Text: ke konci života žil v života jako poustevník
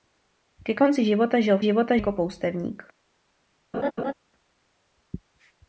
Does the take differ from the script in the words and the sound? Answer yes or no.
yes